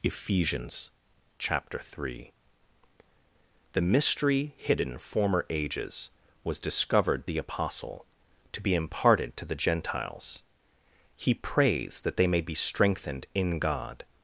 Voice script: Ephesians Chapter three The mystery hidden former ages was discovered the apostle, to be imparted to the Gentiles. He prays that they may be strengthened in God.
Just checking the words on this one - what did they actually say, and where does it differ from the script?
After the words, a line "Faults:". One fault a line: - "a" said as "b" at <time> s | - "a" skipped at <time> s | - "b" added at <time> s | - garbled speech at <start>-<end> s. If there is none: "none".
Ephesians Chapter three The mystery hidden former ages was discovered the apostle, to be imparted to the Gentiles. He prays that they may be strengthened in God.
Faults:
none